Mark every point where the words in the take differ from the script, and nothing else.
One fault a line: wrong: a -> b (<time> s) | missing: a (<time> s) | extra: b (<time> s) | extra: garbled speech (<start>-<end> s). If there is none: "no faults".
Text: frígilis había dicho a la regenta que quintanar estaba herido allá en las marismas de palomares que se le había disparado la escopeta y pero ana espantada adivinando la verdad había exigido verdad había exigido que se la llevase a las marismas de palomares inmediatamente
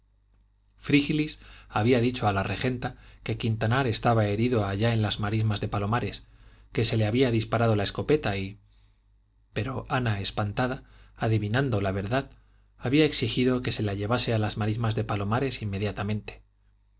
missing: verdad había exigido (13.6 s)